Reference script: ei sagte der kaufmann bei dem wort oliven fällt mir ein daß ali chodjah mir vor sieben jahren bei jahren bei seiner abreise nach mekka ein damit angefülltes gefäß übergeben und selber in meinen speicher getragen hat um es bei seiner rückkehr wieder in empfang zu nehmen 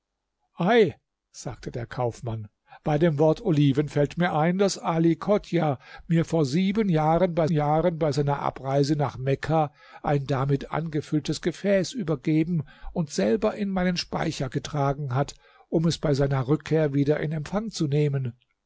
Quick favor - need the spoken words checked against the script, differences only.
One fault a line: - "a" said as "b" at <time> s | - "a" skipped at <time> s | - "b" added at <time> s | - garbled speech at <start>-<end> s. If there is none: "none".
none